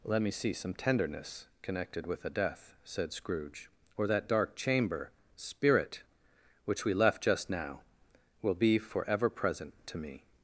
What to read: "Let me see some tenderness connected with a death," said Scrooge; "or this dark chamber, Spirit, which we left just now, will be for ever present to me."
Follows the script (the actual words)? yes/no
no